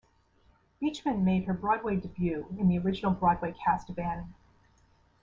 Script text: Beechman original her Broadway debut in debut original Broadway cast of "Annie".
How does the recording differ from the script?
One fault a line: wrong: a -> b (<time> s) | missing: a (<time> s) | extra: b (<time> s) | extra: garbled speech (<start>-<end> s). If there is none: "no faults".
wrong: original -> made (1.2 s)
wrong: debut -> the (2.7 s)